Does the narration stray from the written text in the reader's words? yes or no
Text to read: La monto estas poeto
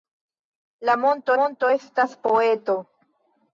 yes